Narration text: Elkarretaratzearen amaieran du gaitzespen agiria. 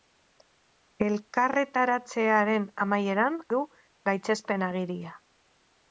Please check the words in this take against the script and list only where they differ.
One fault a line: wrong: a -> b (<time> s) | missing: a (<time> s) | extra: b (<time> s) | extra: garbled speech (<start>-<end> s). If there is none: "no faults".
no faults